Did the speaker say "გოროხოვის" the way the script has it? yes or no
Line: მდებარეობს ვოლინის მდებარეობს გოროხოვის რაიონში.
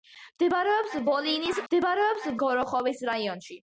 yes